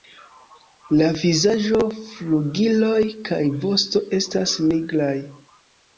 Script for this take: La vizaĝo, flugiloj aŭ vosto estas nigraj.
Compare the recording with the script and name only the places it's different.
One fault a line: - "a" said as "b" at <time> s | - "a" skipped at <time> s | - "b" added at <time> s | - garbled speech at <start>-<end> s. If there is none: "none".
- "aŭ" said as "kaj" at 3.3 s